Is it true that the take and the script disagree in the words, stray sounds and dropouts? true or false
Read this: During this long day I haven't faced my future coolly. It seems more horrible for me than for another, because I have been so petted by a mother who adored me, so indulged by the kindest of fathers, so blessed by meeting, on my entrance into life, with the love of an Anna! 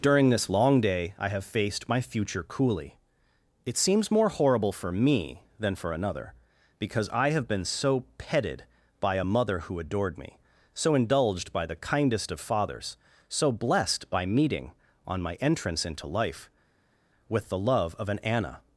true